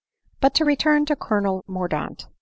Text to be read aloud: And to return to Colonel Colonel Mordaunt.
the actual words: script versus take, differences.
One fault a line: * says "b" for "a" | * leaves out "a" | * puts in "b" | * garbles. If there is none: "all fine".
* says "But" for "And"
* leaves out "Colonel"